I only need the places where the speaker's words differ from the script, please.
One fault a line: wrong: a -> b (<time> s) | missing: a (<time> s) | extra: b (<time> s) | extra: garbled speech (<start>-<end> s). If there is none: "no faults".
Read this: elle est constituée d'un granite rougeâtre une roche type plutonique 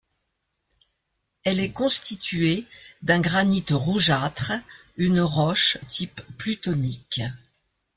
no faults